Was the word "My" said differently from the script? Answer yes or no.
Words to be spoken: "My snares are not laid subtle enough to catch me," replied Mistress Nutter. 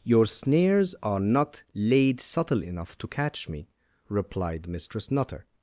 yes